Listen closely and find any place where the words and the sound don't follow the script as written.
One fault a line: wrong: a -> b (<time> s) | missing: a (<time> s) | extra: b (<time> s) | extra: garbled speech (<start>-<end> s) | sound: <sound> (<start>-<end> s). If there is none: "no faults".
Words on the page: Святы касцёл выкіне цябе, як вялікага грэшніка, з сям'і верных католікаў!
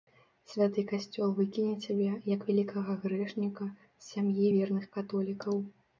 no faults